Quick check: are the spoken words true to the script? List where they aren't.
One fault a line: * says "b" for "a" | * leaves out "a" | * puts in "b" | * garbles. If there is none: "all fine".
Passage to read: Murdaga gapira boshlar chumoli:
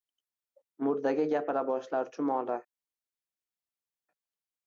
all fine